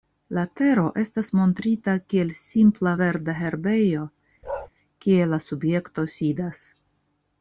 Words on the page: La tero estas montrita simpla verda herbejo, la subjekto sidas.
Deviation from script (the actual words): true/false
true